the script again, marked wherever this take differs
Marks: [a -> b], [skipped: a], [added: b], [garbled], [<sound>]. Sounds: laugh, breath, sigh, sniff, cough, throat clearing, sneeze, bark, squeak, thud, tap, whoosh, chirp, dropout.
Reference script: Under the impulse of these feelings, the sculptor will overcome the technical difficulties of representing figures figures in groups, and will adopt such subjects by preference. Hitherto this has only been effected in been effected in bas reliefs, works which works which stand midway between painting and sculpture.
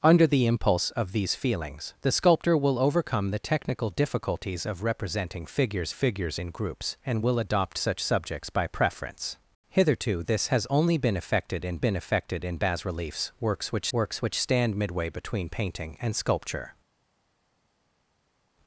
Under the impulse of these feelings, the sculptor will overcome the technical difficulties of representing figures figures in groups, and will adopt such subjects by preference. Hitherto this has only been effected in been effected in bas reliefs, works which works which stand midway between painting and sculpture.